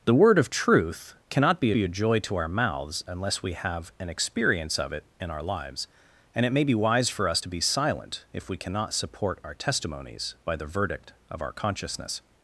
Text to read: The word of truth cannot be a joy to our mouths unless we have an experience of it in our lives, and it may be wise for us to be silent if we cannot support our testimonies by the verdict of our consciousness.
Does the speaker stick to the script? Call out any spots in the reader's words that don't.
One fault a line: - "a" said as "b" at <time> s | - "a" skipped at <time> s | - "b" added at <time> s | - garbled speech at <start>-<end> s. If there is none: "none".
- "be" added at 1.7 s